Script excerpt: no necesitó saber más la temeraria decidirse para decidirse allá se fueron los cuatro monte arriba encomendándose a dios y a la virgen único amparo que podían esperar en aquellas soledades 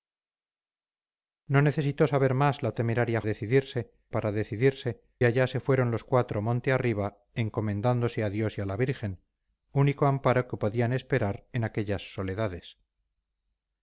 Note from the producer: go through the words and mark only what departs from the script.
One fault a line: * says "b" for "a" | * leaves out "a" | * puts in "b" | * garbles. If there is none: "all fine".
all fine